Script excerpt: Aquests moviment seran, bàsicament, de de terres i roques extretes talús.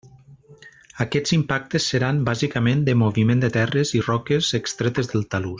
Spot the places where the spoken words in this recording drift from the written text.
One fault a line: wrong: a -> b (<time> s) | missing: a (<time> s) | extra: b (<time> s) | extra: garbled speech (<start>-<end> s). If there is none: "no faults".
wrong: moviment -> impactes (1.4 s)
extra: moviment (3.0 s)
extra: del (5.1 s)